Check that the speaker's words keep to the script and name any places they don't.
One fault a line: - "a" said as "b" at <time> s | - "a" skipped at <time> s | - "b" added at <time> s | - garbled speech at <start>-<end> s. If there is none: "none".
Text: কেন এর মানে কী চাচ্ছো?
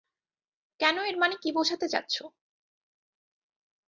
- "বোঝাতে" added at 1.5 s